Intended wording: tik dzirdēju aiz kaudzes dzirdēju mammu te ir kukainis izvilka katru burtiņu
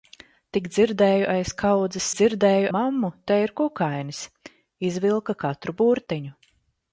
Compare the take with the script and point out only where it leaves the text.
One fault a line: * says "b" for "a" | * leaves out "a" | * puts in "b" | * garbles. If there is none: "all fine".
all fine